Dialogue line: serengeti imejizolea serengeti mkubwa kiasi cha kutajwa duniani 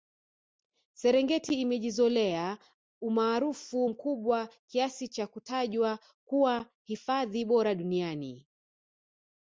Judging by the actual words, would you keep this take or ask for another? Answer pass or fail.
fail